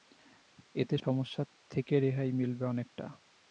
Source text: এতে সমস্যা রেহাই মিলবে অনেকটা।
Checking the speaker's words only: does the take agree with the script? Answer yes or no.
no